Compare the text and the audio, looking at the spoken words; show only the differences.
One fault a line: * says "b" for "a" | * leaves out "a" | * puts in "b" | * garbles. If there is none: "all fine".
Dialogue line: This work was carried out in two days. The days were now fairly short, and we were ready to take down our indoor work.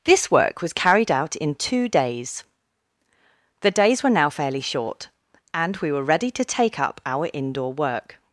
* says "up" for "down"